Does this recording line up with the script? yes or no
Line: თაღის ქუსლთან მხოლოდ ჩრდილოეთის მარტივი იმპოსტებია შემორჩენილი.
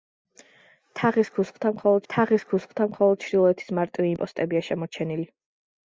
no